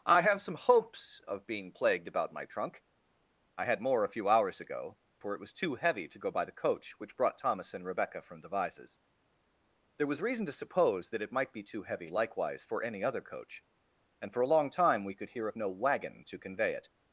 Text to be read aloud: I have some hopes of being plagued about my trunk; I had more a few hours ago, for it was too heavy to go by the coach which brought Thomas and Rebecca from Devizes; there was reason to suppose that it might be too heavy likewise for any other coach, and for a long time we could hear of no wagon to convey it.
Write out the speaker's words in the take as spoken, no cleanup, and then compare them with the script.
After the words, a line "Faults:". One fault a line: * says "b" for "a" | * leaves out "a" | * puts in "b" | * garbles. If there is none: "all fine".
I have some hopes of being plagued about my trunk; I had more a few hours ago, for it was too heavy to go by the coach which brought Thomas and Rebecca from Devizes; there was reason to suppose that it might be too heavy likewise for any other coach, and for a long time we could hear of no wagon to convey it.
Faults:
all fine